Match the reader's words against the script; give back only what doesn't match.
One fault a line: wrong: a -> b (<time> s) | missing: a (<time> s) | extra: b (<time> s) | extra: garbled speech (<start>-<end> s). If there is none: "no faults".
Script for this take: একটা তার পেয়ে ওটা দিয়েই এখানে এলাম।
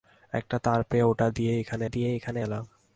extra: দিয়েই এখানে (1.8 s)